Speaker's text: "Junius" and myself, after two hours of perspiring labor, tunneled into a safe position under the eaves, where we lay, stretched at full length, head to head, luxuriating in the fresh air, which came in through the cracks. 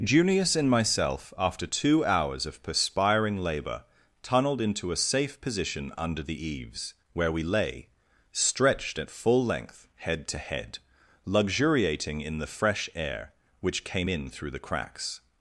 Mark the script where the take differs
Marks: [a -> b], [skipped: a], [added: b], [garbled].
"Junius" and myself, after two hours of perspiring labor, tunneled into a safe position under the eaves, where we lay, stretched at full length, head to head, luxuriating in the fresh air, which came in through the cracks.